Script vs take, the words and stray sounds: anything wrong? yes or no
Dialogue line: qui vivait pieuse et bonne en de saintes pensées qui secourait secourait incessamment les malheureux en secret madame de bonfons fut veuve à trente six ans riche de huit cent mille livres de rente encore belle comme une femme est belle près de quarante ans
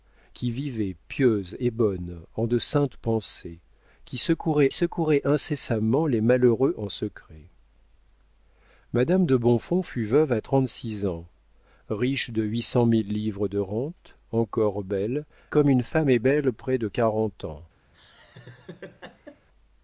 yes